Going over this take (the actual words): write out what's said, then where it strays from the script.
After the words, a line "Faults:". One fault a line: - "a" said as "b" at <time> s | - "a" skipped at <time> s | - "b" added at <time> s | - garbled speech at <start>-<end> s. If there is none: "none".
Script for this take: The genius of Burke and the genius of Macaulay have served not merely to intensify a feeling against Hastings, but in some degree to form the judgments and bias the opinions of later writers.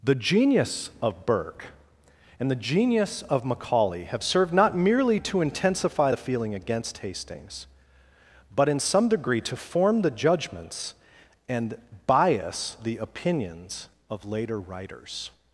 The genius of Burke and the genius of Macaulay have served not merely to intensify the feeling against Hastings, but in some degree to form the judgments and bias the opinions of later writers.
Faults:
- "a" said as "the" at 6.1 s